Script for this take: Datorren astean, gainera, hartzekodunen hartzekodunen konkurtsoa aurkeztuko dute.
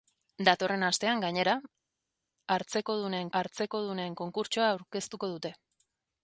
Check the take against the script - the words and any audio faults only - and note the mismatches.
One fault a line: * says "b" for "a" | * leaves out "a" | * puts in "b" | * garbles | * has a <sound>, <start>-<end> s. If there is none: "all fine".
all fine